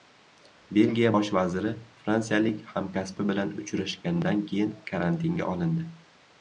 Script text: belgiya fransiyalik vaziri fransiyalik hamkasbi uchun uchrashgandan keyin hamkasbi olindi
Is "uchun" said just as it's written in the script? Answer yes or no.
no